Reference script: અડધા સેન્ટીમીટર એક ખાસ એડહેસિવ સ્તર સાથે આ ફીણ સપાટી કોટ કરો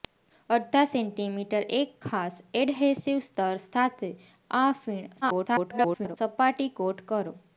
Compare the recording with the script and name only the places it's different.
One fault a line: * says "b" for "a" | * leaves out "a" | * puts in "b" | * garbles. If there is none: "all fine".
* garbles